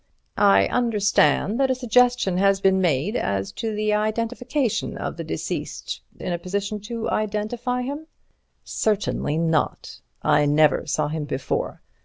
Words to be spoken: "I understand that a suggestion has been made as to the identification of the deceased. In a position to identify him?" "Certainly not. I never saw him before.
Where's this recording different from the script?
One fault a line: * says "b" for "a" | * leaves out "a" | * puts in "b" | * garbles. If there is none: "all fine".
all fine